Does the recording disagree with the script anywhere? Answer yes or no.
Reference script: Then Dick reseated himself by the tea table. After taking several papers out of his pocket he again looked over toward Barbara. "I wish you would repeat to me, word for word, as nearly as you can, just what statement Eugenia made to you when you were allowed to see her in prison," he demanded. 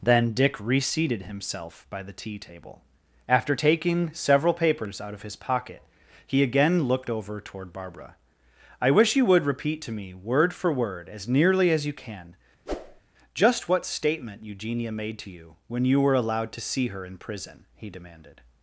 no